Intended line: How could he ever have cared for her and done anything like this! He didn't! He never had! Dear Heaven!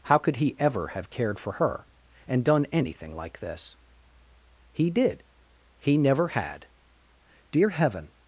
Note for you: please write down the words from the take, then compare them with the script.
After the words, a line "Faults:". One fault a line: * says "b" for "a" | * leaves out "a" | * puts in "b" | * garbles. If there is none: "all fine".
How could he ever have cared for her and done anything like this! He did! He never had! Dear Heaven!
Faults:
* says "did" for "didn't"